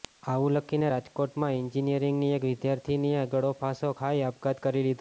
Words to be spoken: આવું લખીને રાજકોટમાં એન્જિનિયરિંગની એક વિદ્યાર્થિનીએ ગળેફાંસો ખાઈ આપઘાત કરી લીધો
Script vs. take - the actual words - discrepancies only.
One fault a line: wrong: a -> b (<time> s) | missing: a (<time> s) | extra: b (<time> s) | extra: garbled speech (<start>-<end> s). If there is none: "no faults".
no faults